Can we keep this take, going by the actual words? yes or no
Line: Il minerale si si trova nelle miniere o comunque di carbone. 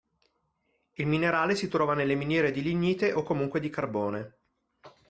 no